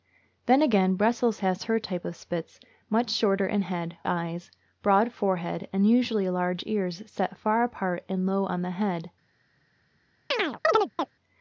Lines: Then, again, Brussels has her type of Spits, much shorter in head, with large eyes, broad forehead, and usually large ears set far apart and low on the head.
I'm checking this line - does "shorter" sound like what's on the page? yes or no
yes